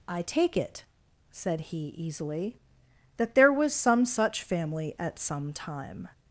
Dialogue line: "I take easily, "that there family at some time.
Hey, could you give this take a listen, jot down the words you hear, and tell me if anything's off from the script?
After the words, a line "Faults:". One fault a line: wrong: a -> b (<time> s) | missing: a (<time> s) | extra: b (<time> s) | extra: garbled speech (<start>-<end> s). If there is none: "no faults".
"I take it," said he easily, "that there was some such family at some time.
Faults:
extra: it said he (0.5 s)
extra: was some such (3.5 s)